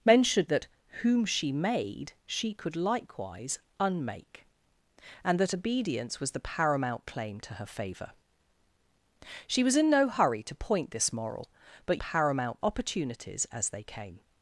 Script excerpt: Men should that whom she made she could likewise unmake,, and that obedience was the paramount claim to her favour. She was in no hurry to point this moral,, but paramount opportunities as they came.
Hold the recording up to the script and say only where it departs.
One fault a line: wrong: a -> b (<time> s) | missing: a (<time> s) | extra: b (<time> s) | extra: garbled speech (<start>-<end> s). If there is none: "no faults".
no faults